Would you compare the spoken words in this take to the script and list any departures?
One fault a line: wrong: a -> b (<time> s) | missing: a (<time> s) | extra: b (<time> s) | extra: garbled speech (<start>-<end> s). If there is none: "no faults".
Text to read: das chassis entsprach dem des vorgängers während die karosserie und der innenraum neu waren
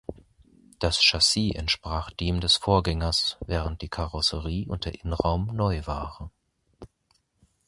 no faults